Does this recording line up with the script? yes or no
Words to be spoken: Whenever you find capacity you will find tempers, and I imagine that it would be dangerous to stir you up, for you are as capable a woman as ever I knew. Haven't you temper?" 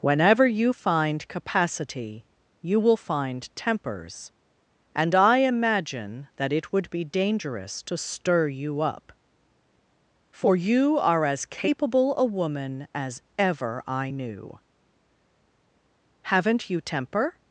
yes